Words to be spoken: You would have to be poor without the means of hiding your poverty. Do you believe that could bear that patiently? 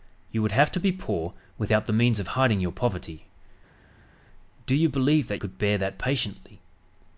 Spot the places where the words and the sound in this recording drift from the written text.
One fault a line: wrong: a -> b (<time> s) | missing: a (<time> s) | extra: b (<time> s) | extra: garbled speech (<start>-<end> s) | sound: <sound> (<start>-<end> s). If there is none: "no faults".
no faults